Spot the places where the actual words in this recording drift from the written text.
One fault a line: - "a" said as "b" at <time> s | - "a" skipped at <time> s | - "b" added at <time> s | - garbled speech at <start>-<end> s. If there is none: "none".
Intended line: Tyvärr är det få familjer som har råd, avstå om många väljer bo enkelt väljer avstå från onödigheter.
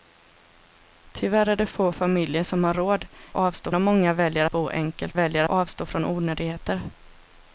none